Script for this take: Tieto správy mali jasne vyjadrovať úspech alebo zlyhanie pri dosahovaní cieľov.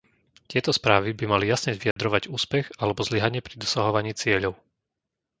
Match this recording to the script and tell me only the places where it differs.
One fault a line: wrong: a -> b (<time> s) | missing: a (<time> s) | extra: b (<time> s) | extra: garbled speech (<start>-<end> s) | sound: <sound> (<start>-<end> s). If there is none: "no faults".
extra: by (1.1 s)
sound: dropout (1.9-2.0 s)